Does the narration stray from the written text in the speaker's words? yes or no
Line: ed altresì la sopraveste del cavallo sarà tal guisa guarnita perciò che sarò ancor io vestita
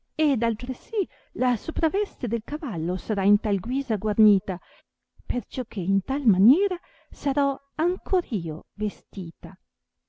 yes